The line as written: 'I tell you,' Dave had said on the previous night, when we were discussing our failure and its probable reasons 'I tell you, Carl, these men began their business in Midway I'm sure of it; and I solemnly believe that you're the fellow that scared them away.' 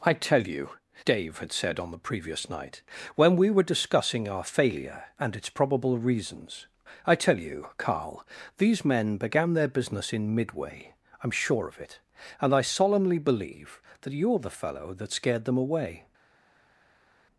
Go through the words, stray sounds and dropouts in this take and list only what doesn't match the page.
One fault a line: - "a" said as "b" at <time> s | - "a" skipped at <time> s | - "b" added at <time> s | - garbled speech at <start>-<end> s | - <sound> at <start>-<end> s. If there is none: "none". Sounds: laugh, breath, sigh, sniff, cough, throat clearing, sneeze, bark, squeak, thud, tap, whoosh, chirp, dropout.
none